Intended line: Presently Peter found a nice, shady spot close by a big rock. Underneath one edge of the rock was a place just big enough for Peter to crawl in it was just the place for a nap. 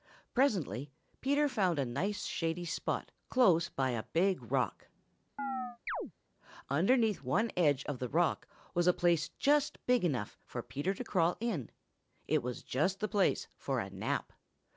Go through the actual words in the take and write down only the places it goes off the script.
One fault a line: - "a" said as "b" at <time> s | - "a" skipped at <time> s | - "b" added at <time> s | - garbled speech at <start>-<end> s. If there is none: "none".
none